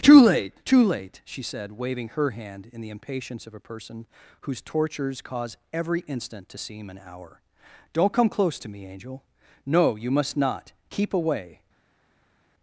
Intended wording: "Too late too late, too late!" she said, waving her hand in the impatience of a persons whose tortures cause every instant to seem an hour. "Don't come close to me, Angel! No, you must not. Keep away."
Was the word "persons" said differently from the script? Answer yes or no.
yes